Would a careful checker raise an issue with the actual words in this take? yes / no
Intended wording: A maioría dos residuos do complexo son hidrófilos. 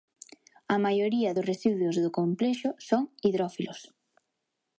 no